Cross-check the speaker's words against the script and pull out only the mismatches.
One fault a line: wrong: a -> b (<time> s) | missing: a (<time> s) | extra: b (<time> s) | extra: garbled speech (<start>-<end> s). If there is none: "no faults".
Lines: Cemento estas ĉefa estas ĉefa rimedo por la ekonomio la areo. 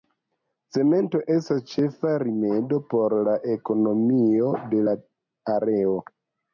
missing: estas ĉefa (2.1 s)
extra: de (4.8 s)